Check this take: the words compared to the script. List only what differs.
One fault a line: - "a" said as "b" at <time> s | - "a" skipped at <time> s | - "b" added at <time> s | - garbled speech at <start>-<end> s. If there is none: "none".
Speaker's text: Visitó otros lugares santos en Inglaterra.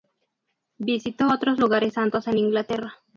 none